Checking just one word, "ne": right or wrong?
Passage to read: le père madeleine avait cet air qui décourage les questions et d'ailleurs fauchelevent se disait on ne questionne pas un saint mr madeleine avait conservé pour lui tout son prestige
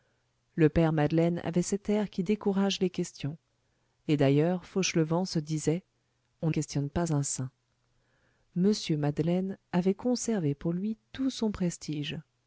wrong